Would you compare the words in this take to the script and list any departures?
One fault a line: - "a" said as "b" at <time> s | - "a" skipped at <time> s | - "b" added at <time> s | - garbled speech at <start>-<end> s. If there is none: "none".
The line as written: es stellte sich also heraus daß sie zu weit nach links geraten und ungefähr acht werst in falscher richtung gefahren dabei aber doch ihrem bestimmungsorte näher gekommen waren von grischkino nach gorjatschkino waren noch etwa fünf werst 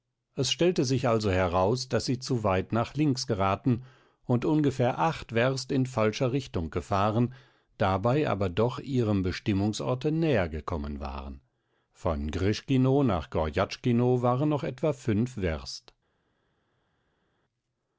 none